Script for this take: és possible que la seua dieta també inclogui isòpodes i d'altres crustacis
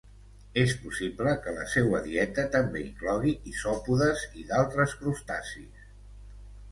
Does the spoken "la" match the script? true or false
true